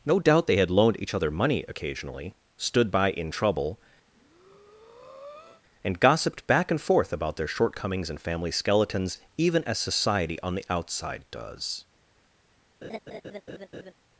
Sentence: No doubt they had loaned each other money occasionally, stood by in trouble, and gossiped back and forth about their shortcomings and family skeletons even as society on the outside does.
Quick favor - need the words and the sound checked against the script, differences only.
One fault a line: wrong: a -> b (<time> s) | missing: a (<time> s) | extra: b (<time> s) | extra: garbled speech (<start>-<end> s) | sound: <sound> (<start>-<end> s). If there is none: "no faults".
sound: breath (4.1-5.6 s)
sound: laugh (12.8-13.9 s)